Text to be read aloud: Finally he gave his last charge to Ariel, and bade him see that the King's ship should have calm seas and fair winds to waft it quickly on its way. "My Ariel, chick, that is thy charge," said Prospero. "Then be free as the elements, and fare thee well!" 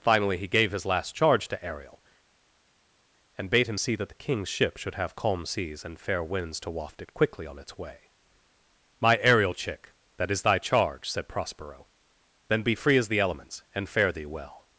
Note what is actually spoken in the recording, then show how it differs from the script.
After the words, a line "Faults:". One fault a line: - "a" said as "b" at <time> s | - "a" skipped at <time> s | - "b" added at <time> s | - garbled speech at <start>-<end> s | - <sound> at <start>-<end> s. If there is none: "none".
Finally he gave his last charge to Ariel, and bade him see that the King's ship should have calm seas and fair winds to waft it quickly on its way. "My Ariel, chick, that is thy charge," said Prospero. "Then be free as the elements, and fare thee well!"
Faults:
none